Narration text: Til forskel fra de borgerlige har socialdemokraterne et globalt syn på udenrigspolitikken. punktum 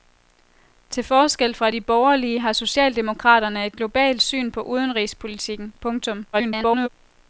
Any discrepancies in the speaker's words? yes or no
yes